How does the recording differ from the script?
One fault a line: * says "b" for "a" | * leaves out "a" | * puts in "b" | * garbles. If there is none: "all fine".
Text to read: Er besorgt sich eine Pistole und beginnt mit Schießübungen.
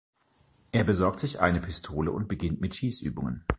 all fine